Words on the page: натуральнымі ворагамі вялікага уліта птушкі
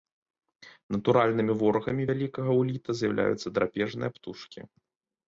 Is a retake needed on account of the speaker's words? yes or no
yes